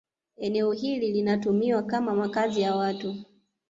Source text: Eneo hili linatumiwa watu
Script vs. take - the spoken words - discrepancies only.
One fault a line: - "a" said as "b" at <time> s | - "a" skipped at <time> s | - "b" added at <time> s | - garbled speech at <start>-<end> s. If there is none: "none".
- "kama makazi ya" added at 1.8 s